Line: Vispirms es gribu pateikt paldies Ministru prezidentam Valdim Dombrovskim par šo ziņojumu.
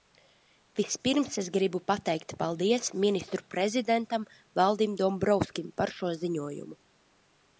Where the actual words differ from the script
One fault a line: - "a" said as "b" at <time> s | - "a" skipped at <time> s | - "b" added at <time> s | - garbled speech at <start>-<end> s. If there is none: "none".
none